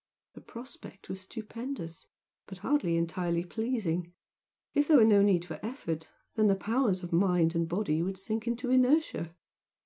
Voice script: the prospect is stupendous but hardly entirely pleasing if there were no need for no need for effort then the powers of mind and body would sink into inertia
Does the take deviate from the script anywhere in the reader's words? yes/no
yes